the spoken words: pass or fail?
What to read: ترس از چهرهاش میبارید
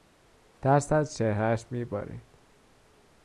pass